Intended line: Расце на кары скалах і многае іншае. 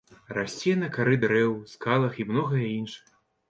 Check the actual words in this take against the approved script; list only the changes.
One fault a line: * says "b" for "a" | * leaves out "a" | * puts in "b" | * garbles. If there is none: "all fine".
* puts in "дрэў"